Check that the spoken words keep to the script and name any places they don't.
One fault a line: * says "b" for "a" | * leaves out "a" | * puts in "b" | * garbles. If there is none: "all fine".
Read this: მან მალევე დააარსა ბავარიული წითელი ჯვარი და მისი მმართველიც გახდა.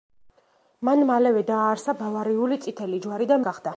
* leaves out "მისი მმართველიც"